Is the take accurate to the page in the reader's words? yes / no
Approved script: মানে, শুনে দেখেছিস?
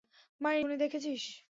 yes